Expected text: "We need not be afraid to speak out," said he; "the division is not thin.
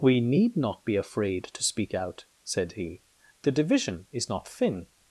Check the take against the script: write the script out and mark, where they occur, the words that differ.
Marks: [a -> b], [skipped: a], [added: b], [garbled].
"We need not be afraid to speak out," said he; "the division is not thin.